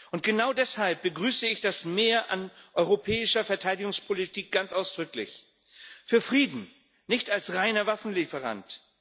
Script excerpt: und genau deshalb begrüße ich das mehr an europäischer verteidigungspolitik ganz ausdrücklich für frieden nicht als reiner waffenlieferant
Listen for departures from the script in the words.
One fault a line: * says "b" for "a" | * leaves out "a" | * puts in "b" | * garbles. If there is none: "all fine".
all fine